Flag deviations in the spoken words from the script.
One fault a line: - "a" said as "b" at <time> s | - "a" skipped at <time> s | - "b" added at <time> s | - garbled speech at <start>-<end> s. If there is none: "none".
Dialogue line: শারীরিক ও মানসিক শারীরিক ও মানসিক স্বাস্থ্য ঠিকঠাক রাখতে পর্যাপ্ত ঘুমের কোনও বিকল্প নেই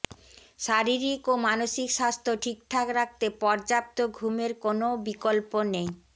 - "শারীরিক ও মানসিক" skipped at 1.9 s